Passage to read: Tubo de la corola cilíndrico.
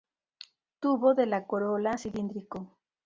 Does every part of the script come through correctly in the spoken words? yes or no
yes